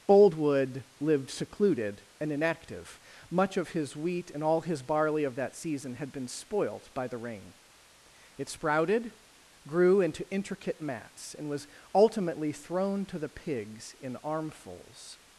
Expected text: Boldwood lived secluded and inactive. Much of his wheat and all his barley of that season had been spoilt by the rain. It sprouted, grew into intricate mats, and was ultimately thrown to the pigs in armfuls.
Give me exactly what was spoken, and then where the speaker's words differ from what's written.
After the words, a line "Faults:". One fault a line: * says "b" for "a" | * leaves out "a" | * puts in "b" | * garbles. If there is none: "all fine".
Boldwood lived secluded and inactive. Much of his wheat and all his barley of that season had been spoilt by the rain. It sprouted, grew into intricate mats, and was ultimately thrown to the pigs in armfuls.
Faults:
all fine